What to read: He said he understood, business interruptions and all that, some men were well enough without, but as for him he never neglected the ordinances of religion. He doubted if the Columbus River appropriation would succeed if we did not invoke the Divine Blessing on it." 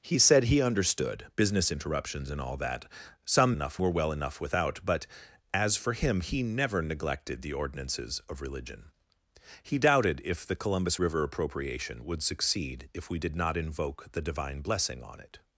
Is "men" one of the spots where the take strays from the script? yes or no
yes